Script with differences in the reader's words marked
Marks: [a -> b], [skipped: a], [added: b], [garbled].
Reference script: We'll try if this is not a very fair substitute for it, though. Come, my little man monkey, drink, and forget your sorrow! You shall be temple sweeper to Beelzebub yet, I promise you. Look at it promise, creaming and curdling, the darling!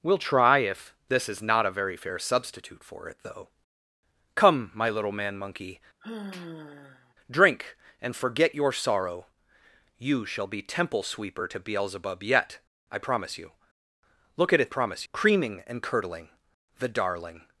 We'll try if this is not a very fair substitute for it, though. Come, my little man monkey, drink, and forget your sorrow! You shall be temple sweeper to Beelzebub yet, I promise you. Look at it promise, creaming and curdling, the darling!